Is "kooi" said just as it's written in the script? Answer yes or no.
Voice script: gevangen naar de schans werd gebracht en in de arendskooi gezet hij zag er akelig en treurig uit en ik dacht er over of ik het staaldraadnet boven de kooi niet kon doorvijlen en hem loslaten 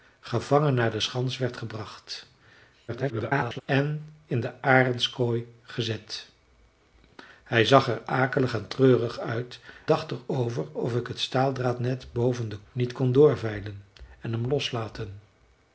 no